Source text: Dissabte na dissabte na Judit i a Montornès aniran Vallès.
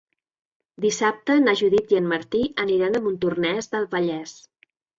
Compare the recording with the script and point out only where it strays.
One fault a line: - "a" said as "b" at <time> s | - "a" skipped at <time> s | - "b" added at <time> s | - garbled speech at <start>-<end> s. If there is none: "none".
- "dissabte na Judit i" said as "Judit i en Martí aniran" at 1.6 s
- "aniran" said as "del" at 3.8 s